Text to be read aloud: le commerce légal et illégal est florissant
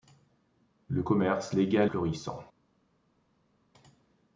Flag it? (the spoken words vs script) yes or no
yes